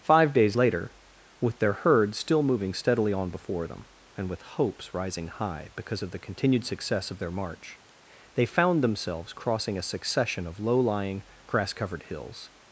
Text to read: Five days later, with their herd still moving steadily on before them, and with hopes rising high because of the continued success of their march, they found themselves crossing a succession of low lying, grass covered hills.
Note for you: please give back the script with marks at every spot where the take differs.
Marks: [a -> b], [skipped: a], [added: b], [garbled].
Five days later, with their herd still moving steadily on before them, and with hopes rising high because of the continued success of their march, they found themselves crossing a succession of low lying, grass covered hills.